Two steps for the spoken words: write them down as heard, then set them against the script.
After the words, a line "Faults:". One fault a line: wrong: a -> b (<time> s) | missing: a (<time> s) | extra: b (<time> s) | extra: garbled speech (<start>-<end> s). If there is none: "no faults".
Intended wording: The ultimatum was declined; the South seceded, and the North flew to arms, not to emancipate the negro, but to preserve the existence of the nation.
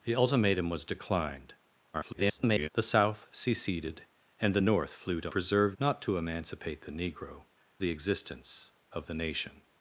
The ultimatum was declined; [garbled] the South seceded, and the North flew to preserve, not to emancipate the negro, the existence of the nation.
Faults:
extra: garbled speech (1.9-2.7 s)
wrong: arms -> preserve (5.3 s)
missing: but to preserve (7.4 s)